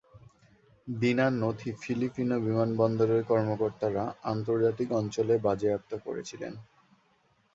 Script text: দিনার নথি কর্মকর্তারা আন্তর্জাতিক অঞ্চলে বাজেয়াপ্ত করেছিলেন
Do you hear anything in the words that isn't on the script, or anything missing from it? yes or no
yes